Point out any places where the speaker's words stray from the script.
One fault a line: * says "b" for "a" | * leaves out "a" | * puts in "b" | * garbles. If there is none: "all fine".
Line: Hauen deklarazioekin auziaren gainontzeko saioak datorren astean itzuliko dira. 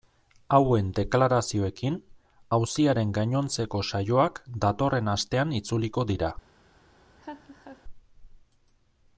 all fine